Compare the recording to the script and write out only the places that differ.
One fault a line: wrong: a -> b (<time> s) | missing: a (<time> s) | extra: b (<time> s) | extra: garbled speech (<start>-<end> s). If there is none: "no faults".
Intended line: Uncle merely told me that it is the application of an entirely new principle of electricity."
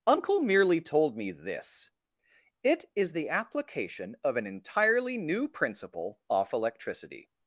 wrong: that -> this (1.3 s)
wrong: of -> off (6.3 s)